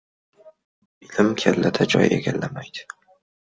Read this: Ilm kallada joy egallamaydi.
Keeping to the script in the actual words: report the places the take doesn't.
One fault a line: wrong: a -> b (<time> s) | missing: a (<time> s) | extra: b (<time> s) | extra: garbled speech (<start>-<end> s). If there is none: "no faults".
no faults